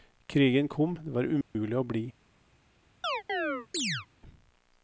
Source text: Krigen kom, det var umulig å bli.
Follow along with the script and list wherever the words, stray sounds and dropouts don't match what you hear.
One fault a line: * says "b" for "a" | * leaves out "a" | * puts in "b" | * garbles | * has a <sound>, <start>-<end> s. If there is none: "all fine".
* has a dropout, 1.4-1.6 s
* has a chirp, 3.0-4.1 s